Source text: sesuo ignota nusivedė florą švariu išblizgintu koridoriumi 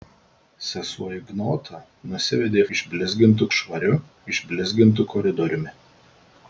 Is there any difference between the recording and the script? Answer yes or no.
yes